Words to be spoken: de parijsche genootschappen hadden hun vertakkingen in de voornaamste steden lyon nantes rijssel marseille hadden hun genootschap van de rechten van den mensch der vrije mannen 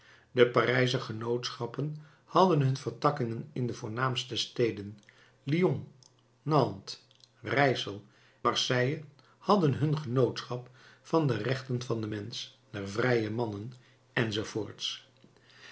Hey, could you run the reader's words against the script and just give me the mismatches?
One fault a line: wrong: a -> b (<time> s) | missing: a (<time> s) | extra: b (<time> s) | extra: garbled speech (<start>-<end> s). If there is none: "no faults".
no faults